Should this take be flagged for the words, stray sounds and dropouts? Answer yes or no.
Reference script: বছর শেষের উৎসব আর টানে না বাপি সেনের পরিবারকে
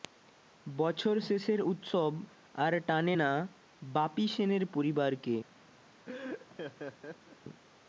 yes